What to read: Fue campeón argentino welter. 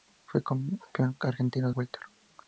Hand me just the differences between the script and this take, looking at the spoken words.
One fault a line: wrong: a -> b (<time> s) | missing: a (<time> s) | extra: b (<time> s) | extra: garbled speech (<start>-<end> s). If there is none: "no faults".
no faults